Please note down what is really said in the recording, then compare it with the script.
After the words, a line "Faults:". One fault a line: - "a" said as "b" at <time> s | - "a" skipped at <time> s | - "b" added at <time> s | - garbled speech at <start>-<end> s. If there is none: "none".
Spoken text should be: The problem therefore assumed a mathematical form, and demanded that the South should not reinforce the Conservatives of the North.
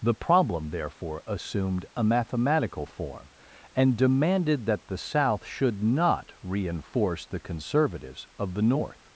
The problem therefore assumed a mathematical form, and demanded that the South should not reinforce the Conservatives of the North.
Faults:
none